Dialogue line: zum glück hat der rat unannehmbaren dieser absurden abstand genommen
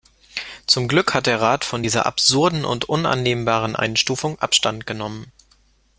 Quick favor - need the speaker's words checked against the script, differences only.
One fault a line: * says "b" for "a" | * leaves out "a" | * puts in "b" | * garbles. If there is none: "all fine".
* says "von" for "unannehmbaren"
* puts in "und unannehmbaren einstufung"